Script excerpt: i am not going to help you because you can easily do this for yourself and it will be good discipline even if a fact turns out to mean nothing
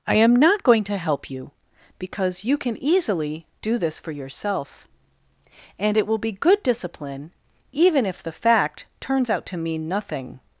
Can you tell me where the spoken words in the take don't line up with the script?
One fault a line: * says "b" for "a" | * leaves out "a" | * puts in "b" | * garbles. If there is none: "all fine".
* says "the" for "a"